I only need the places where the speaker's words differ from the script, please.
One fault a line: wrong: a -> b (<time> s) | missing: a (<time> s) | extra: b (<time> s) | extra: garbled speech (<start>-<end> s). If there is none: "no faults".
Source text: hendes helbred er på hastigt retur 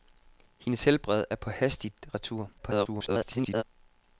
extra: garbled speech (2.6-3.6 s)